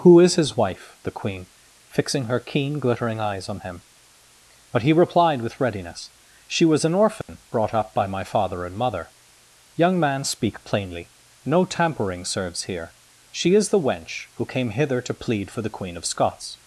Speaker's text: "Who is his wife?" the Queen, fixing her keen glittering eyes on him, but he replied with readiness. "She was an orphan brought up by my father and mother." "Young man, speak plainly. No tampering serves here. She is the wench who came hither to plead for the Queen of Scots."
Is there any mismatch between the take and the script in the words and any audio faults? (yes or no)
yes